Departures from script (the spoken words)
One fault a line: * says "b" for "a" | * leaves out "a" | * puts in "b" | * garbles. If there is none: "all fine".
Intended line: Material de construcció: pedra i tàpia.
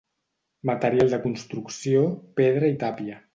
all fine